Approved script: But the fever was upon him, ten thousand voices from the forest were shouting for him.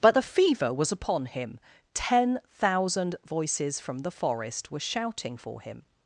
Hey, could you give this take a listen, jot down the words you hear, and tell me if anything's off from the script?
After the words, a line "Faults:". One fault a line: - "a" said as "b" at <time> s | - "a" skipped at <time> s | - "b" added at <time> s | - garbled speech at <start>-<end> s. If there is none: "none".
But the fever was upon him, ten thousand voices from the forest were shouting for him.
Faults:
none